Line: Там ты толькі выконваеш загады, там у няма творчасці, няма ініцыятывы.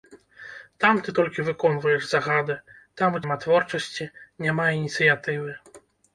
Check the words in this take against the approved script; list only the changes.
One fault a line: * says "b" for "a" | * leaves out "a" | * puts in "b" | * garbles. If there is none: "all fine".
all fine